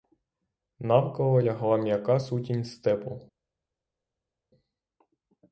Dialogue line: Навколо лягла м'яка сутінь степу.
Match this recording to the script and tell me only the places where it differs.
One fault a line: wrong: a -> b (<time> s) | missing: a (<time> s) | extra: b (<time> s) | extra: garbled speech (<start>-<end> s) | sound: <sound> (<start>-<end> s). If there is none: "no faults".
no faults